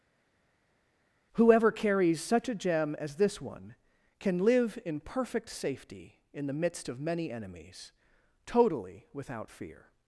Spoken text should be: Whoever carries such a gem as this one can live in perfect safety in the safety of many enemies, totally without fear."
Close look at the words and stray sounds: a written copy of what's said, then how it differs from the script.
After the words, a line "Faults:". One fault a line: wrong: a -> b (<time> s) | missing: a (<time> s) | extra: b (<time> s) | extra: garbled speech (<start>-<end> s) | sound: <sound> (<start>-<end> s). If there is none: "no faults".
Whoever carries such a gem as this one can live in perfect safety in the midst of many enemies, totally without fear."
Faults:
wrong: safety -> midst (6.5 s)